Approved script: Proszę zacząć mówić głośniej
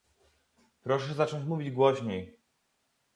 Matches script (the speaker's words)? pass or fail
pass